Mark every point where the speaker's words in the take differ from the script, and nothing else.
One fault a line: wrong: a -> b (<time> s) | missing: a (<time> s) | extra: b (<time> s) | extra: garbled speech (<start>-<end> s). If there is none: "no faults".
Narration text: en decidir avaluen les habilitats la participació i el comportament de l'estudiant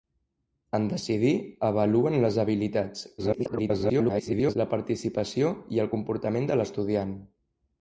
extra: garbled speech (3.2-4.6 s)